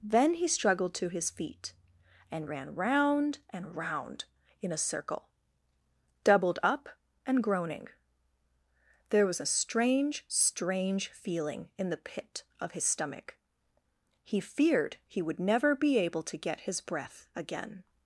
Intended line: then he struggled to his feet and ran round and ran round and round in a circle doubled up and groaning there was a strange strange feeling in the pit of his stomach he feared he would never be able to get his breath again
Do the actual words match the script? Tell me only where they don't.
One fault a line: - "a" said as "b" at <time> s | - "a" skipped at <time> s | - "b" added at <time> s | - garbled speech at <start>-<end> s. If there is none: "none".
- "ran round and" skipped at 3.8 s